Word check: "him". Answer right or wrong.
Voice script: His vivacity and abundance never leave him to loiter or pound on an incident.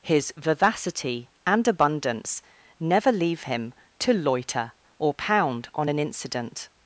right